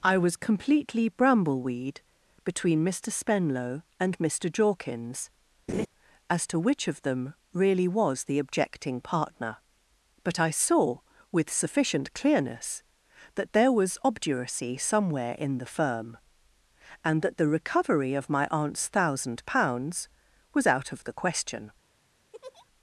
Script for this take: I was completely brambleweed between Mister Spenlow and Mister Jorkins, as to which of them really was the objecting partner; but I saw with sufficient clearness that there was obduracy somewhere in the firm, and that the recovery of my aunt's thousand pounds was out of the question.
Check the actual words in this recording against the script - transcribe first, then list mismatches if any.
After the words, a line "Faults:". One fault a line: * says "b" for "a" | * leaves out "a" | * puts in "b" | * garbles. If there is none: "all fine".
I was completely brambleweed between Mister Spenlow and Mister Jorkins, as to which of them really was the objecting partner; but I saw with sufficient clearness that there was obduracy somewhere in the firm, and that the recovery of my aunt's thousand pounds was out of the question.
Faults:
all fine